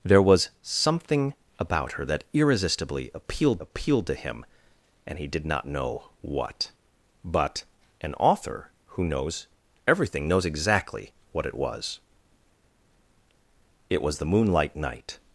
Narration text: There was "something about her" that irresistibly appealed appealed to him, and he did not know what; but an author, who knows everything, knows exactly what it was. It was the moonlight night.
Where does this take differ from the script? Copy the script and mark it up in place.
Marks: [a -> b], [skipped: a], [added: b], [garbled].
There was "something about her" that irresistibly appealed appealed to him, and he did not know what; but an author, who knows everything, knows exactly what it was. It was the moonlight night.